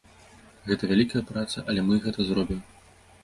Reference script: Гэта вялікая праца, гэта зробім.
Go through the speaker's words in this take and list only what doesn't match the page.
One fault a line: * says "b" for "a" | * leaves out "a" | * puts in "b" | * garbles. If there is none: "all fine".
* puts in "але мы"